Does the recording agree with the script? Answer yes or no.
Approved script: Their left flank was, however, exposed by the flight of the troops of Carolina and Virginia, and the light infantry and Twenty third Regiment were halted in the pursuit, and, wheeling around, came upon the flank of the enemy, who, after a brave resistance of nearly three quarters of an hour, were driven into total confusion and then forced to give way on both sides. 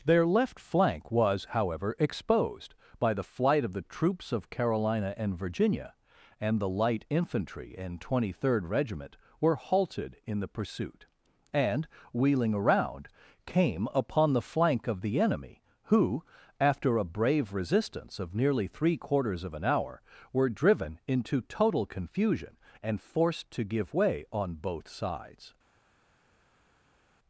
no